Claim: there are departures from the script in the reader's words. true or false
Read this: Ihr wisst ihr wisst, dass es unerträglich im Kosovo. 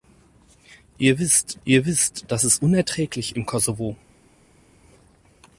false